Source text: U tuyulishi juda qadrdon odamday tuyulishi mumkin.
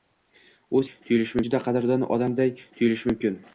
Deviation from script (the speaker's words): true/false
false